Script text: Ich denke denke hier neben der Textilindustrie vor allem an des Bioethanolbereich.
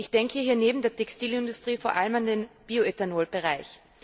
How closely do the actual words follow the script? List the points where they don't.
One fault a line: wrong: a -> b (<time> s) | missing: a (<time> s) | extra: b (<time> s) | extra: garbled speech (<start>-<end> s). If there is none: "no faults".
missing: denke (0.4 s)
wrong: des -> den (2.2 s)